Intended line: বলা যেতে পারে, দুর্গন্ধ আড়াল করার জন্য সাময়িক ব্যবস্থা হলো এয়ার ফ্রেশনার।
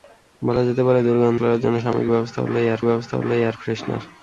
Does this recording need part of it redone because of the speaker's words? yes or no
yes